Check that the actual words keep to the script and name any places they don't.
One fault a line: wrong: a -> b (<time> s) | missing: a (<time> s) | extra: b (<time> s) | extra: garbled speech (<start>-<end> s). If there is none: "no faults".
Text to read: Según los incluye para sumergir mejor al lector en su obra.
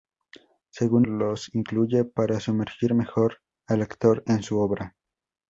no faults